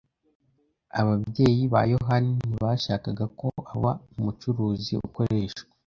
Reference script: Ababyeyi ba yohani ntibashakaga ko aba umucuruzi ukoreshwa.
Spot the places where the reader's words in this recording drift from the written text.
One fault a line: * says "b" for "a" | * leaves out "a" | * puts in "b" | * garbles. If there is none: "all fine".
all fine